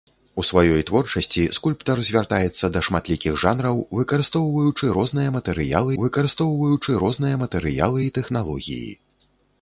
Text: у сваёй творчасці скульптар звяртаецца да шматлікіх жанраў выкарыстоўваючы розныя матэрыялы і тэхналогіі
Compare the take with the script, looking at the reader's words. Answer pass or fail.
fail